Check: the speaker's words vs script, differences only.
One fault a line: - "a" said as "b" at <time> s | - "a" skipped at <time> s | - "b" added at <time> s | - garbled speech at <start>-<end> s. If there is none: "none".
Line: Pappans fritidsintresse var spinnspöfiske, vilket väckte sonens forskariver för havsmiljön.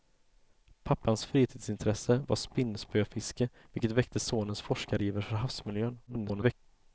- garbled speech at 6.1-6.5 s